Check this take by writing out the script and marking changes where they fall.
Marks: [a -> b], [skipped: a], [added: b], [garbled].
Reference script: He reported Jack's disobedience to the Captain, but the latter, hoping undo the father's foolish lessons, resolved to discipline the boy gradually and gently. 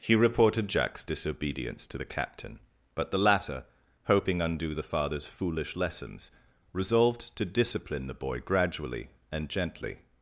He reported Jack's disobedience to the Captain, but the latter, hoping undo the father's foolish lessons, resolved to discipline the boy gradually and gently.